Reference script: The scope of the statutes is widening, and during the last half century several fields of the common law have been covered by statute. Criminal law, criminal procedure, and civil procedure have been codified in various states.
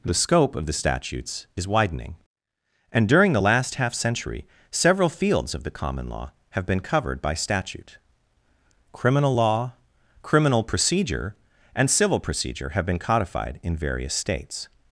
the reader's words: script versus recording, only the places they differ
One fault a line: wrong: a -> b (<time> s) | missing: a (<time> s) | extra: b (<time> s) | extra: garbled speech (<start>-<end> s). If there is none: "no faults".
no faults